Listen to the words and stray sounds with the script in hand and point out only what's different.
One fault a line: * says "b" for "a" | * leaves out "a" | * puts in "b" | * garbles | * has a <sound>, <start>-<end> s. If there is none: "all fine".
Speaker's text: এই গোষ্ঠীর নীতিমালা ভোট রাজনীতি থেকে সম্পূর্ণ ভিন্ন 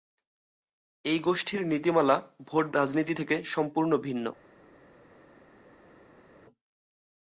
all fine